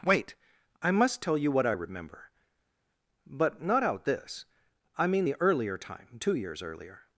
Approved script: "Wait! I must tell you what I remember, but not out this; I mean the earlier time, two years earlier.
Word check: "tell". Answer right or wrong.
right